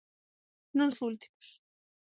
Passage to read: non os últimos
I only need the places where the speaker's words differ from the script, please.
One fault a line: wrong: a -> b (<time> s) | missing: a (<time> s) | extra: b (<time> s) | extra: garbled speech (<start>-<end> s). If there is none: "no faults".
no faults